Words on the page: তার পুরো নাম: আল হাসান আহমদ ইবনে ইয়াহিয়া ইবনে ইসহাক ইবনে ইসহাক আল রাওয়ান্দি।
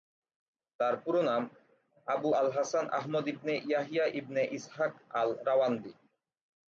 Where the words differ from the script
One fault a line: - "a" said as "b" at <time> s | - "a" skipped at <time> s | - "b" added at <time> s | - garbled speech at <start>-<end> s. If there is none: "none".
- "আবু" added at 2.1 s
- "ইবনে ইসহাক" skipped at 4.9 s